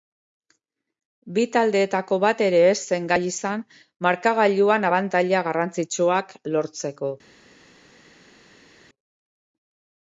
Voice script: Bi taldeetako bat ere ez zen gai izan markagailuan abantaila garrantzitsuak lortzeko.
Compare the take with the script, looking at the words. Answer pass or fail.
pass